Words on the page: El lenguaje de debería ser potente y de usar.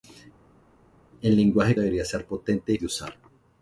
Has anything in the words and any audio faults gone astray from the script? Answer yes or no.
no